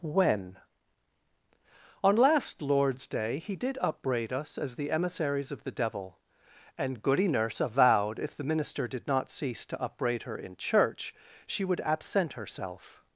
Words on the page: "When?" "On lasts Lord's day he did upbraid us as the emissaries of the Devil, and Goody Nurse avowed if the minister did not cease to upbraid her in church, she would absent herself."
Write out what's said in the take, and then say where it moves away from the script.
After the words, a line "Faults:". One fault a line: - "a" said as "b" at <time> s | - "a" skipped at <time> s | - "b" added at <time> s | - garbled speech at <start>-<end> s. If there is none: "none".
"When?" "On last Lord's day he did upbraid us as the emissaries of the Devil, and Goody Nurse avowed if the minister did not cease to upbraid her in church, she would absent herself."
Faults:
- "lasts" said as "last" at 2.1 s